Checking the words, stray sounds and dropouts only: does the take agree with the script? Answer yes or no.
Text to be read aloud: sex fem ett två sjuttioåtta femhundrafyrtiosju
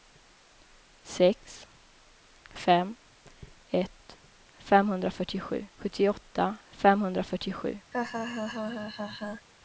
no